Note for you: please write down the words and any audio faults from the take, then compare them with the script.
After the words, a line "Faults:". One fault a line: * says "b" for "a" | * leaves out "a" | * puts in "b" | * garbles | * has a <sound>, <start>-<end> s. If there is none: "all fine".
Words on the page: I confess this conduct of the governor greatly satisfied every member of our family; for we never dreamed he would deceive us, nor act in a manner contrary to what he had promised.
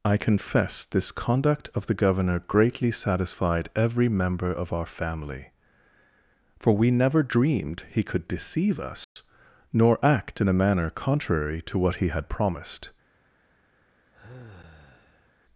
I confess this conduct of the governor greatly satisfied every member of our family; for we never dreamed he could deceive us, nor act in a manner contrary to what he had promised.
Faults:
* says "could" for "would"
* has a dropout, 9.0-9.2 s
* has a sigh, 14.1-15.3 s